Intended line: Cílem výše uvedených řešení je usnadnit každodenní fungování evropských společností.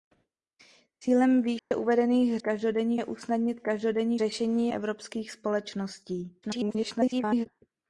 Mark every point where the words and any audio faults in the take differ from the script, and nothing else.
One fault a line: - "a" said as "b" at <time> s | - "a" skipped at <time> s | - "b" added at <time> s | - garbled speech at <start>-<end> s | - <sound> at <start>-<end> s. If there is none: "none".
- dropout at 1.6-1.7 s
- "řešení" said as "každodenní" at 2.4 s
- "fungování" said as "řešení" at 4.2 s
- garbled speech at 6.4-7.5 s